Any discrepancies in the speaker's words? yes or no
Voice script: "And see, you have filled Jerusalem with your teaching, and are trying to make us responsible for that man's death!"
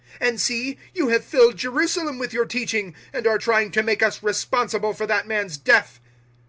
no